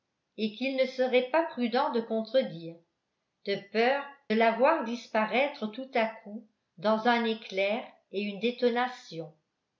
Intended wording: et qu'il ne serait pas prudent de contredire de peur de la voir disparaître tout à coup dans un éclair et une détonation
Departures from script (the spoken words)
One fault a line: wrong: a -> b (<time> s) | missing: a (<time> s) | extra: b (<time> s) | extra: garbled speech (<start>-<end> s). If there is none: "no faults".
missing: de (4.0 s)